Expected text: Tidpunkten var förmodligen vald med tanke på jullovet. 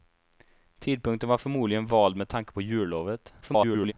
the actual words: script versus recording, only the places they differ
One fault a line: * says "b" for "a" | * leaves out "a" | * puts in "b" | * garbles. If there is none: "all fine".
* garbles